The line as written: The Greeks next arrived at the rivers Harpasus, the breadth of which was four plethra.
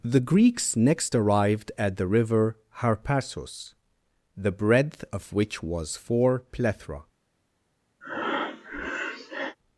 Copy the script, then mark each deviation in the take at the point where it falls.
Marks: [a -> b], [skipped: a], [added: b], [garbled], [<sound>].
The Greeks next arrived at the [rivers -> river] Harpasus, the breadth of which was four plethra. [breath]